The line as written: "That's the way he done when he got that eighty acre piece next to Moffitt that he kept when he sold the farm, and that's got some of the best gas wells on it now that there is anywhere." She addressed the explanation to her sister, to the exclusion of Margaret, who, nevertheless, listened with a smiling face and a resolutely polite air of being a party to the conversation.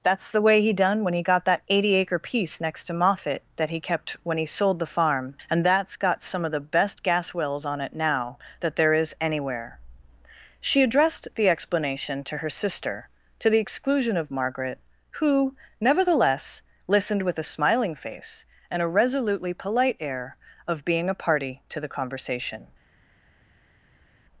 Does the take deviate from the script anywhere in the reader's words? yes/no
no